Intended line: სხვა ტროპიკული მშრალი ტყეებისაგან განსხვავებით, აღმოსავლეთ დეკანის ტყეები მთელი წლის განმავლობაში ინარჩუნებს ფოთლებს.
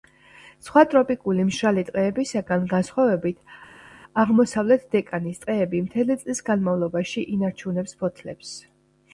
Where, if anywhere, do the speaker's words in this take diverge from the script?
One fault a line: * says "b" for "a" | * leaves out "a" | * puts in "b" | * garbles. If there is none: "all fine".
all fine